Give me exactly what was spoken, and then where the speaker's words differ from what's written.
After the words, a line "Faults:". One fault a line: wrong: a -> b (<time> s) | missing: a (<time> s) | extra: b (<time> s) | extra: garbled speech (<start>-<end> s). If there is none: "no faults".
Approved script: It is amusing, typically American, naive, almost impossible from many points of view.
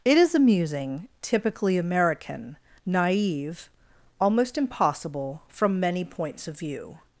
It is amusing, typically American, naive, almost impossible from many points of view.
Faults:
no faults